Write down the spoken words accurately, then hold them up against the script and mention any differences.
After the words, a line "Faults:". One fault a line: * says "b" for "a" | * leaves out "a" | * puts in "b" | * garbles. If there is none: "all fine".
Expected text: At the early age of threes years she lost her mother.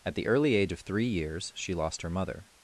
At the early age of three years she lost her mother.
Faults:
* says "three" for "threes"